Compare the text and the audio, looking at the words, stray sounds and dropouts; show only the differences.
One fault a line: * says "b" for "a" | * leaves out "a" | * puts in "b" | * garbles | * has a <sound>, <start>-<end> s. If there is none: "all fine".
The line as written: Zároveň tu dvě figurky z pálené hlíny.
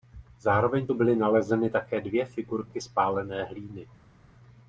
* puts in "byly nalezeny také"